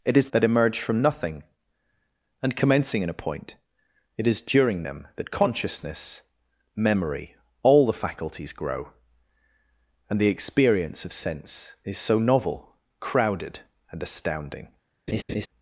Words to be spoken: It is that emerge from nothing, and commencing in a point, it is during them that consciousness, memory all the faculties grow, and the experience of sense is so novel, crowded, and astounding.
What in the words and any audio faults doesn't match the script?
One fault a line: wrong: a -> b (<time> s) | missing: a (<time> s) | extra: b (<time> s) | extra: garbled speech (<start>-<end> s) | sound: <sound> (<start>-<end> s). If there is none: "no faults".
sound: laugh (15.1-15.5 s)